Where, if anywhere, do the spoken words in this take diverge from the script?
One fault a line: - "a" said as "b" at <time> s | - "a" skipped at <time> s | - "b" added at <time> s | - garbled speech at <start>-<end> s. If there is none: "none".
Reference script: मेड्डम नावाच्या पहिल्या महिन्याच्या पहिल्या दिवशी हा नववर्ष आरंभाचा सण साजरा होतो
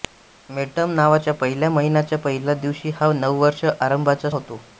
- "सण साजरा" skipped at 4.3 s